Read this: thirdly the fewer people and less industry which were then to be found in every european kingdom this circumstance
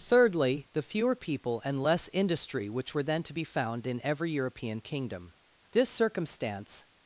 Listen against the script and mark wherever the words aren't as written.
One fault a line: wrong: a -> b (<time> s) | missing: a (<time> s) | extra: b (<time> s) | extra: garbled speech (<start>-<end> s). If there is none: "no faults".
no faults